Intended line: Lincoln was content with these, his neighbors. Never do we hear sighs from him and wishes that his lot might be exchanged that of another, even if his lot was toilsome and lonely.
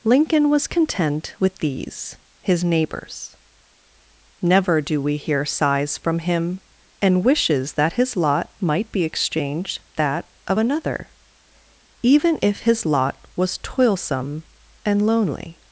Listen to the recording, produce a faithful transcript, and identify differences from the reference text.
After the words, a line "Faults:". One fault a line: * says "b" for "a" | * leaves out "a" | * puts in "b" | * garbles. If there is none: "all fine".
Lincoln was content with these, his neighbors. Never do we hear sighs from him and wishes that his lot might be exchanged that of another, even if his lot was toilsome and lonely.
Faults:
all fine